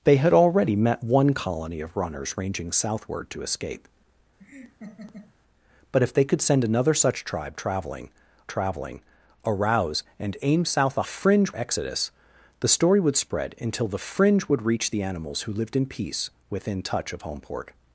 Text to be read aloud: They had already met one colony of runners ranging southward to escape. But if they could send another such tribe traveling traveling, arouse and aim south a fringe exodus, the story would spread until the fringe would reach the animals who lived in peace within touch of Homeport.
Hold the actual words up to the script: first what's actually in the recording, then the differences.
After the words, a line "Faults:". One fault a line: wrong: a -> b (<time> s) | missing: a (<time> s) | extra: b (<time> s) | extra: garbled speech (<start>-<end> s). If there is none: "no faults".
They had already met one colony of runners ranging southward to escape. But if they could send another such tribe traveling traveling, arouse and aim south a fringe exodus, the story would spread until the fringe would reach the animals who lived in peace within touch of Homeport.
Faults:
no faults